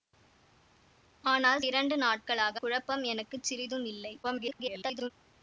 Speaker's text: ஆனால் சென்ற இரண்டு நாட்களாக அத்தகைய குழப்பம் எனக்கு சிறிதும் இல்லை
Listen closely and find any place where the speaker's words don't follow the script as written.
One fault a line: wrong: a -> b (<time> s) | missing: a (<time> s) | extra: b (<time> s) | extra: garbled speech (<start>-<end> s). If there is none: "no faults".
missing: சென்ற (1.6 s)
missing: அத்தகைய (2.6 s)
extra: garbled speech (4.2-5.1 s)